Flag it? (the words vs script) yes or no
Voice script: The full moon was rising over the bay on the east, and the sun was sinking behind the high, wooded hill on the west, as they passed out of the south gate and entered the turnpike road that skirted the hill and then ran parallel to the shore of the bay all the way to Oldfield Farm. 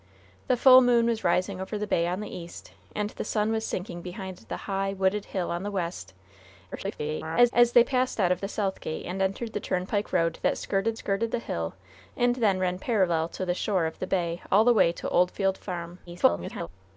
yes